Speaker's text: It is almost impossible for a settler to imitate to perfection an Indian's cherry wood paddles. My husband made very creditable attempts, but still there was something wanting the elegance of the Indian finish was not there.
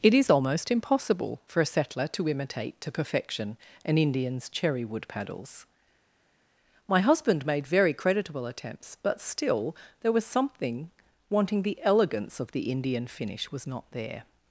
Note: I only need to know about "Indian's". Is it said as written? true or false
true